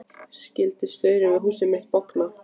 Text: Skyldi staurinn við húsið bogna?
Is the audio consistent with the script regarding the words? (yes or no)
no